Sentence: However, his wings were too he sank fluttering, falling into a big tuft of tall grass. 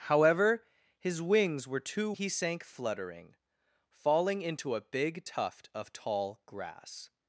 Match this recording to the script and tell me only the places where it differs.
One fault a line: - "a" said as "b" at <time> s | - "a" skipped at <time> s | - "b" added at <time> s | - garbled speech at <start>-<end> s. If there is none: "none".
none